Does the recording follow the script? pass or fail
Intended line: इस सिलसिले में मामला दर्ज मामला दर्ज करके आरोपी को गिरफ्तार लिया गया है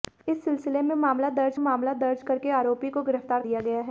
pass